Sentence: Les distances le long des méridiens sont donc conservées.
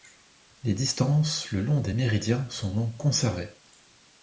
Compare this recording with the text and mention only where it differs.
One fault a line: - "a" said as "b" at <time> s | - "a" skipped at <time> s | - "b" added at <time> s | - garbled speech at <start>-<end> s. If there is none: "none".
none